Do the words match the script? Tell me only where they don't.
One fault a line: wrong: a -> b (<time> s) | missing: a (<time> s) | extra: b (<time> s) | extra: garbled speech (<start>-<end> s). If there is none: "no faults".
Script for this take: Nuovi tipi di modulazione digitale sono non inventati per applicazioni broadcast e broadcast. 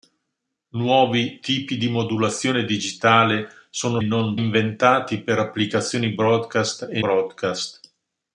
no faults